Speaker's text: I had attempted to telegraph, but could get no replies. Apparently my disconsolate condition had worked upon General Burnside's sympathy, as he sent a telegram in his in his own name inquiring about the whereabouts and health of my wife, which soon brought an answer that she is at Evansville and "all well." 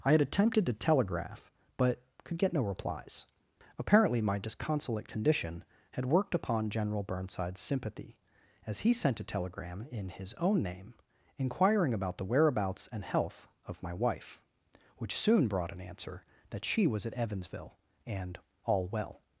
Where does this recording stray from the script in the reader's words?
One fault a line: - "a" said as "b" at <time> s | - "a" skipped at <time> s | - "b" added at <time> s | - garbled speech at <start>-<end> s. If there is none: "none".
- "in his" skipped at 10.3 s
- "is" said as "was" at 16.9 s